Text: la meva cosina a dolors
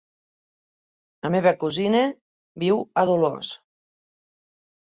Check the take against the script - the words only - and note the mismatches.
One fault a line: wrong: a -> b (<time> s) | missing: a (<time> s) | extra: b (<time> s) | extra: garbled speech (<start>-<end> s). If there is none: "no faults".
extra: viu (2.7 s)